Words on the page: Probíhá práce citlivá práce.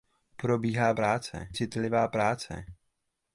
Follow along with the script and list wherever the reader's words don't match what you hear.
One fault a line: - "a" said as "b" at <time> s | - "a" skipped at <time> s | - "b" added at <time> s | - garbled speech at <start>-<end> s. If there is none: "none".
none